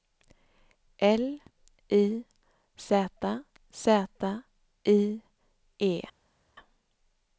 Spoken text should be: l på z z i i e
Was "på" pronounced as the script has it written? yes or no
no